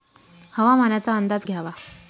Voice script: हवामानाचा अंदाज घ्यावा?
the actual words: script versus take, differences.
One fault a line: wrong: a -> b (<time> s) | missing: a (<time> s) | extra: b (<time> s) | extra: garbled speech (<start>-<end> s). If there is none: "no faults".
no faults